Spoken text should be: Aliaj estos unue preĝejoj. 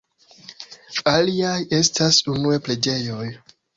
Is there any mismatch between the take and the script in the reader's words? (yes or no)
yes